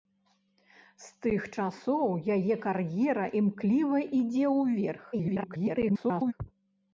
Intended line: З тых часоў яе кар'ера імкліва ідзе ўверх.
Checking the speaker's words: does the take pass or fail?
fail